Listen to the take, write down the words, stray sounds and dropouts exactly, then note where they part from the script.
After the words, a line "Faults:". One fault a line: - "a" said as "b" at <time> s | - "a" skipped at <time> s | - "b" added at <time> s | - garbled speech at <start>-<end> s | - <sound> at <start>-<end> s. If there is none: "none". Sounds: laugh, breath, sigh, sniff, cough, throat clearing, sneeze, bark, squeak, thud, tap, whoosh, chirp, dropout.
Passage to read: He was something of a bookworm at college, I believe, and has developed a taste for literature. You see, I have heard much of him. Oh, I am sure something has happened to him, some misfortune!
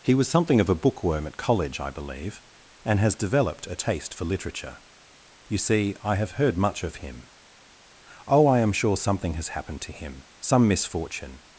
He was something of a bookworm at college, I believe, and has developed a taste for literature. You see, I have heard much of him. Oh, I am sure something has happened to him, some misfortune!
Faults:
none